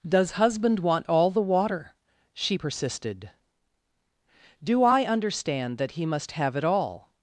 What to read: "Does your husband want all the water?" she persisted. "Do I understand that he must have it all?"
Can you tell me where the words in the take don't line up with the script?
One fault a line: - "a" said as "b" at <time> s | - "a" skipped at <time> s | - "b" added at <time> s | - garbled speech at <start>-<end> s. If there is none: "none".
- "your" skipped at 0.3 s